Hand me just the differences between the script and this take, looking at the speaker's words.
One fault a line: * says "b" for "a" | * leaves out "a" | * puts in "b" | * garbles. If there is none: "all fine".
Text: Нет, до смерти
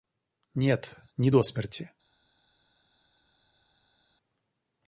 * puts in "не"